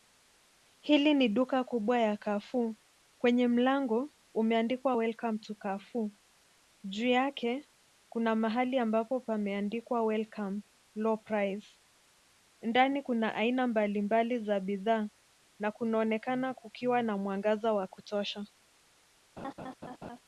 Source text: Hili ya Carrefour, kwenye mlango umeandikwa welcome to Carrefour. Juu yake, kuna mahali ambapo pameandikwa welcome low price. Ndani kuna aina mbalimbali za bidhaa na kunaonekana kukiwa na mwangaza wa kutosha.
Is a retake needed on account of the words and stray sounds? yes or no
yes